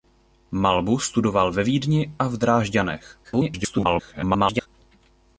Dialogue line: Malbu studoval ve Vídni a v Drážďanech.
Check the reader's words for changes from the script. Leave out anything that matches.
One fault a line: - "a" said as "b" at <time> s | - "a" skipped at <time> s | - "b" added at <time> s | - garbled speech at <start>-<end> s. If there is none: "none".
- garbled speech at 3.2-4.7 s